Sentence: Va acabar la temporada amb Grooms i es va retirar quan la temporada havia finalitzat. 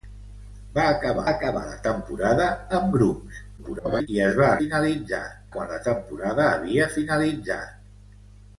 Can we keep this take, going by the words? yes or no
no